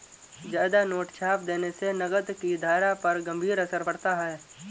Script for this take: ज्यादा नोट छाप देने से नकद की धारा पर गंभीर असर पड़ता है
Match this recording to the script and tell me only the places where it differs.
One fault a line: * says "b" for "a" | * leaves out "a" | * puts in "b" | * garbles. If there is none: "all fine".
all fine